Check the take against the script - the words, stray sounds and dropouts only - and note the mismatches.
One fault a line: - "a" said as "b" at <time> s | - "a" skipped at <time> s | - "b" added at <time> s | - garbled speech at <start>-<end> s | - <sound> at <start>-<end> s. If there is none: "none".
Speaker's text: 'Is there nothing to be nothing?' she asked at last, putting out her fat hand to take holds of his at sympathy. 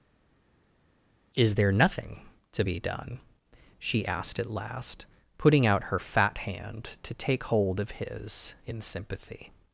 - "nothing" said as "done" at 2.8 s
- "holds" said as "hold" at 7.4 s
- "at" said as "in" at 8.7 s